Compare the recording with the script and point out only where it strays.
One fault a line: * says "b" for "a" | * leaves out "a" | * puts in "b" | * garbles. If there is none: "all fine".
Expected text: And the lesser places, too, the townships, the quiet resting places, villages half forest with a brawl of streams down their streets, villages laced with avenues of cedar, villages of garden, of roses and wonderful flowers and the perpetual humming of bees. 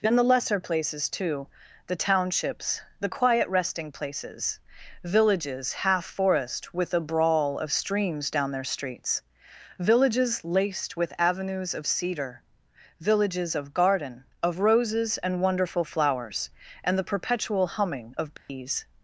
all fine